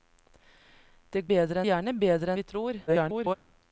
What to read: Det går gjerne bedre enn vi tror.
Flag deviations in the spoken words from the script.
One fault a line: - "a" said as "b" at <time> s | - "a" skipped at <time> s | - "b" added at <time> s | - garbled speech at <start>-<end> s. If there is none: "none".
- "går" said as "bedre" at 1.3 s
- "enn" skipped at 2.3 s
- garbled speech at 2.9-3.4 s